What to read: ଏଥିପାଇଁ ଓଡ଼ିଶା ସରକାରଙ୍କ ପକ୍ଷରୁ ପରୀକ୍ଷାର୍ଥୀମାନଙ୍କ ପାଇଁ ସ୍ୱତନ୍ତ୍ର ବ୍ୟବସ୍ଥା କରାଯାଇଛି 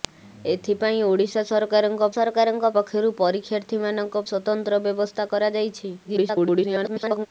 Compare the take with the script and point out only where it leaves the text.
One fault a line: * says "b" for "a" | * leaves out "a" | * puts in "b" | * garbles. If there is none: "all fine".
* puts in "ସରକାରଙ୍କ"
* leaves out "ପାଇଁ"
* garbles